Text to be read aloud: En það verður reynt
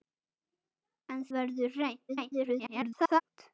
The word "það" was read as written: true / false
false